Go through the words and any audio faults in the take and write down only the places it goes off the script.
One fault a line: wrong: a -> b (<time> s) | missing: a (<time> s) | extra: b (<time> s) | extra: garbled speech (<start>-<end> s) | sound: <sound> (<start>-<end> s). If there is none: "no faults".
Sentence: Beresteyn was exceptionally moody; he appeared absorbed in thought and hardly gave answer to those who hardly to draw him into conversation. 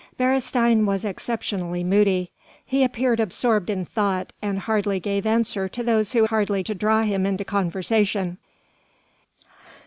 no faults